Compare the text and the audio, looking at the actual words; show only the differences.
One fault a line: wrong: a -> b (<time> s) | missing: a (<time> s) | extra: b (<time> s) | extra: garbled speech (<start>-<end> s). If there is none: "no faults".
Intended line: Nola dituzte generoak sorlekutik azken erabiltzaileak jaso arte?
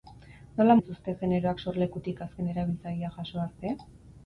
no faults